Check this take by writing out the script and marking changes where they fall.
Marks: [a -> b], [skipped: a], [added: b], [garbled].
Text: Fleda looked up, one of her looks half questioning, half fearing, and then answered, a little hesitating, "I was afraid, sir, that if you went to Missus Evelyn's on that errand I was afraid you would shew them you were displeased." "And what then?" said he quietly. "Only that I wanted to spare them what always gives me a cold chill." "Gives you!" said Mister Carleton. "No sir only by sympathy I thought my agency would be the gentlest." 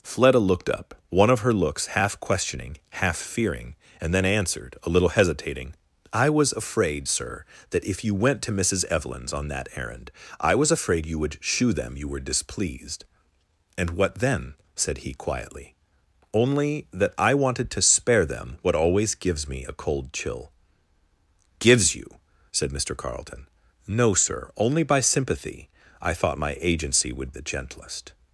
Fleda looked up, one of her looks half questioning, half fearing, and then answered, a little hesitating, "I was afraid, sir, that if you went to Missus Evelyn's on that errand I was afraid you would shew them you were displeased." "And what then?" said he quietly. "Only that I wanted to spare them what always gives me a cold chill." "Gives you!" said Mister Carleton. "No sir only by sympathy I thought my agency would [skipped: be] the gentlest."